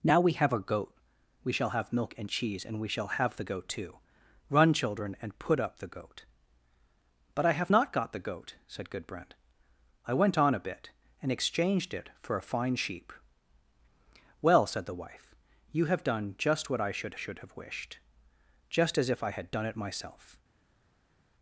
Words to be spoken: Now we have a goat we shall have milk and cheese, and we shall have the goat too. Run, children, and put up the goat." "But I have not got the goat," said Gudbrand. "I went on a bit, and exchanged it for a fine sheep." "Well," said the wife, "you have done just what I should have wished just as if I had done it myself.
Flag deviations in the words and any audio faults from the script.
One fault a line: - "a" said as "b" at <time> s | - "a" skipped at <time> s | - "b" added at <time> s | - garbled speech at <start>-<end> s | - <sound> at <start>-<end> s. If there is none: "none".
- "should" added at 17.2 s